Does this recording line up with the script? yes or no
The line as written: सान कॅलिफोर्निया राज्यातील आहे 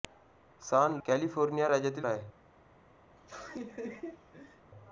yes